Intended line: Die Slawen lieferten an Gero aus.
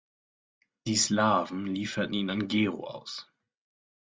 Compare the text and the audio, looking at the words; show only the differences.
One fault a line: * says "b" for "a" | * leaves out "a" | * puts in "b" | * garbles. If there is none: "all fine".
* puts in "ihn"